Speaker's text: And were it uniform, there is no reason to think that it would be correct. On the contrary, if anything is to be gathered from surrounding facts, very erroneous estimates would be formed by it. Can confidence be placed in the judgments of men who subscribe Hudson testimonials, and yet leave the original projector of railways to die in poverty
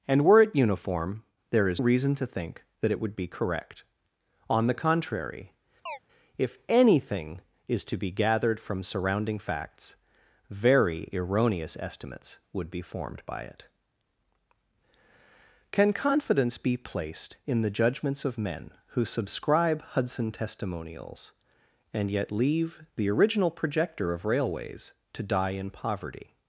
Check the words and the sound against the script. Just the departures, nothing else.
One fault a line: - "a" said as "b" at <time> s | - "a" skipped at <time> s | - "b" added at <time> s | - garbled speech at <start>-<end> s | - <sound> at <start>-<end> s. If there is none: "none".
- "no" skipped at 1.8 s
- chirp at 5.9-6.0 s